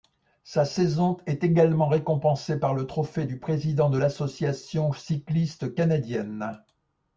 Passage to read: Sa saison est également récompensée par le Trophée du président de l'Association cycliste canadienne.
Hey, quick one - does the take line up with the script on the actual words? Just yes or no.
yes